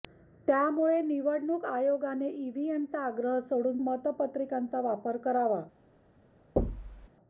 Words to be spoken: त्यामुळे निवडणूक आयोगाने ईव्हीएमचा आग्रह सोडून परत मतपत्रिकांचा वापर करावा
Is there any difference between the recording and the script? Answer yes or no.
yes